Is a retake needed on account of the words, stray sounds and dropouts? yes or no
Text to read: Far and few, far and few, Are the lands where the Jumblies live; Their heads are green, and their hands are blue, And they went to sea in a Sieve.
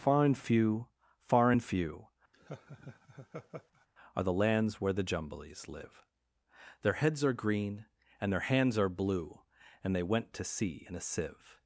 yes